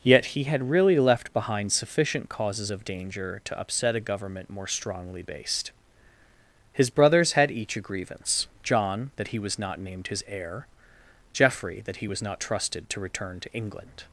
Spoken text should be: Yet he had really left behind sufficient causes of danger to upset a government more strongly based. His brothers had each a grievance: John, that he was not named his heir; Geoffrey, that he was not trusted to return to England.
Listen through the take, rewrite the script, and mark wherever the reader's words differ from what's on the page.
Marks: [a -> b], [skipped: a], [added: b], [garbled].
Yet he had really left behind sufficient causes of danger to upset a government more strongly based. His brothers had each a grievance: John, that he was not named his heir; Geoffrey, that he was not trusted to return to England.